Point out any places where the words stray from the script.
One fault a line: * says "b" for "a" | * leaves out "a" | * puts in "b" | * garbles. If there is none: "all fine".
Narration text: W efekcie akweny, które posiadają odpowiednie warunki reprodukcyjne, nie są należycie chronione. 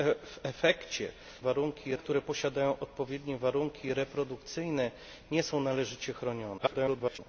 * says "warunki" for "akweny"
* garbles